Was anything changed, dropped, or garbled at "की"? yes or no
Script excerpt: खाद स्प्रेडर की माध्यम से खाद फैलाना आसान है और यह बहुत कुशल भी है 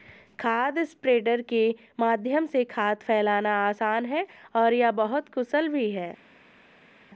yes